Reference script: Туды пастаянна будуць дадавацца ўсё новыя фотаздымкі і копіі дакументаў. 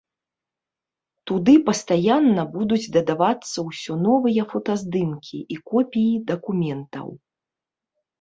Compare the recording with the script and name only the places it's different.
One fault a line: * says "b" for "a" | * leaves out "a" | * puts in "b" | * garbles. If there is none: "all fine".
all fine